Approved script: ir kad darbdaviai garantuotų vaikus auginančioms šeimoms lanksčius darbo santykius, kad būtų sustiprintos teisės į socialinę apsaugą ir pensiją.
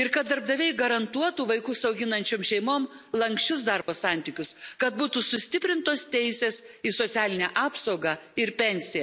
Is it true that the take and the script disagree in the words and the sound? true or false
true